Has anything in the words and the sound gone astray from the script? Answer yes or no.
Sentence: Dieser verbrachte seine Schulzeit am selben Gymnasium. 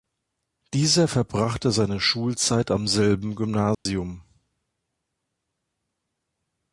yes